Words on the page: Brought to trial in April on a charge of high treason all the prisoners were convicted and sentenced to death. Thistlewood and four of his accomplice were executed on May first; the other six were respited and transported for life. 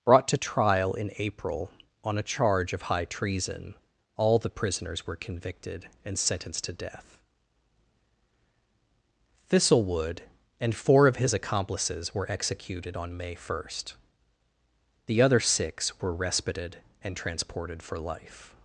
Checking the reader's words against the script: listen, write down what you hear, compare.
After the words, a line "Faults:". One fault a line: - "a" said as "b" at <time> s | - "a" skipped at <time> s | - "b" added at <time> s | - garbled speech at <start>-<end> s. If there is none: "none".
Brought to trial in April on a charge of high treason all the prisoners were convicted and sentenced to death. Thistlewood and four of his accomplices were executed on May first; the other six were respited and transported for life.
Faults:
- "accomplice" said as "accomplices" at 11.3 s